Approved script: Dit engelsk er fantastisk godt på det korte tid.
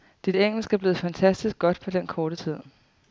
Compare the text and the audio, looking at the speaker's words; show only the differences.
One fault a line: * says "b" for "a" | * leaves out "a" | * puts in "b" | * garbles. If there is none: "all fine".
* puts in "blevet"
* says "den" for "det"